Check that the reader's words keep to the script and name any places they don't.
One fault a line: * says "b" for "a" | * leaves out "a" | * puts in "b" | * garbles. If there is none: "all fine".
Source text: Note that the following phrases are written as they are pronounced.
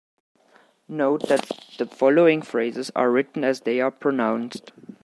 all fine